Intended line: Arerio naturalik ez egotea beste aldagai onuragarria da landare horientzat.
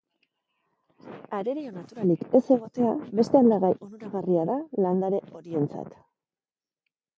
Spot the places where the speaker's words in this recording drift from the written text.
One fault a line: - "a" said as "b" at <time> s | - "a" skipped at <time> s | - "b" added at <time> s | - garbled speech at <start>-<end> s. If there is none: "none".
none